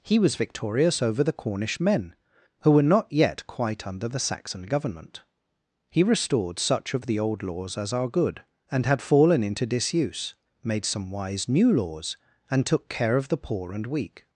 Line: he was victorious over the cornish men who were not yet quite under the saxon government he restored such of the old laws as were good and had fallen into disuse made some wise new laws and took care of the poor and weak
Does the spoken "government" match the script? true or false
true